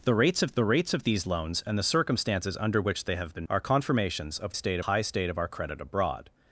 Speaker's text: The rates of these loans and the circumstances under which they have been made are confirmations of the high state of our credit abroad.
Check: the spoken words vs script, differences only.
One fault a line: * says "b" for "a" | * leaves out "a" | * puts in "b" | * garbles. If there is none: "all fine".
* puts in "the rates of"
* leaves out "made"
* says "state" for "the"